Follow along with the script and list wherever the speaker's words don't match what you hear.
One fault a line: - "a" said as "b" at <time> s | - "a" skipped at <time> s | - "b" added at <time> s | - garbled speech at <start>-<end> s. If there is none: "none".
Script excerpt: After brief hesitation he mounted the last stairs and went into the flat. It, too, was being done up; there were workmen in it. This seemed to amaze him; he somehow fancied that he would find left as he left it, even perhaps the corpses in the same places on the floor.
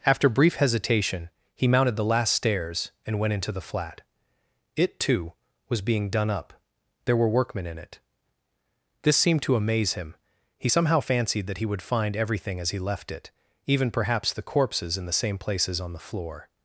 - "left" said as "everything" at 12.1 s